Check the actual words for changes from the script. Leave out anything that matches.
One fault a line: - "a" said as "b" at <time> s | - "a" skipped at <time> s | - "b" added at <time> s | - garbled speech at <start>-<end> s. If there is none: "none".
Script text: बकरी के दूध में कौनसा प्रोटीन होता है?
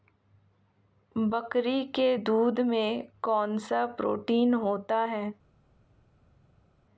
none